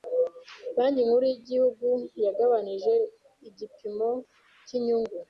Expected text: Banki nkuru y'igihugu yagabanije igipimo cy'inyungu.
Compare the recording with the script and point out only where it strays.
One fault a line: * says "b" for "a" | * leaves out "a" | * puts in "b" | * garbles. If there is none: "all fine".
all fine